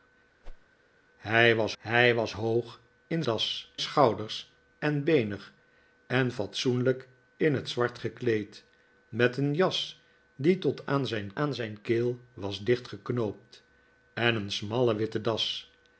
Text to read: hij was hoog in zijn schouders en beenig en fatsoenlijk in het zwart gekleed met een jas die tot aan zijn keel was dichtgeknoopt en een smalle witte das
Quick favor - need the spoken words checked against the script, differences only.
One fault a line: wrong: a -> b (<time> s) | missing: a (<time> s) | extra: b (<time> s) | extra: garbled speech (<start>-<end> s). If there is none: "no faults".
extra: hij was (1.8 s)
wrong: zijn -> das (3.2 s)
extra: aan zijn (11.3 s)